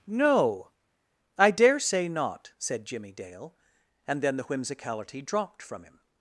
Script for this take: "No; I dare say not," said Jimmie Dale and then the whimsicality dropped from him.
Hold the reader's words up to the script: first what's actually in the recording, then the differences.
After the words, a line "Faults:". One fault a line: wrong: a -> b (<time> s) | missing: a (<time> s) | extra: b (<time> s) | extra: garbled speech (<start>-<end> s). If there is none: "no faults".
"No; I dare say not," said Jimmie Dale and then the whimsicality dropped from him.
Faults:
no faults